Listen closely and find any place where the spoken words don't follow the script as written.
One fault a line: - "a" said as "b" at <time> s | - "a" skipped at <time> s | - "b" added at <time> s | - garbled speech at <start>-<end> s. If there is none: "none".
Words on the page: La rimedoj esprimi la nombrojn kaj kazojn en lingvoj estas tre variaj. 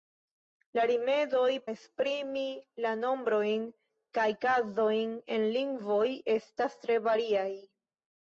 none